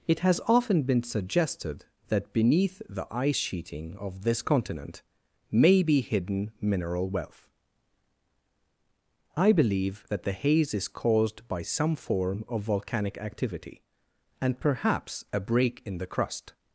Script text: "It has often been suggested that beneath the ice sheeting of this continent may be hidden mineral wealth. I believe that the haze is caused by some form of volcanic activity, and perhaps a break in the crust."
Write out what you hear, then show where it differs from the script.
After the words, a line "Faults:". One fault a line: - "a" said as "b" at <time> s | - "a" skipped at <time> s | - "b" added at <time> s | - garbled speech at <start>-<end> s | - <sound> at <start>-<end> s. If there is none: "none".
"It has often been suggested that beneath the ice sheeting of this continent may be hidden mineral wealth. I believe that the haze is caused by some form of volcanic activity, and perhaps a break in the crust."
Faults:
none